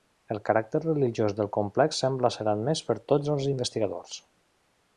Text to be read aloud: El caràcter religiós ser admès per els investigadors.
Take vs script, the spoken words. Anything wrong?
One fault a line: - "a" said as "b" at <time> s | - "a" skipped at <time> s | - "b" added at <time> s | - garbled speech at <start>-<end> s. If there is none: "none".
- "del complex sembla" added at 1.4 s
- "tots" added at 3.1 s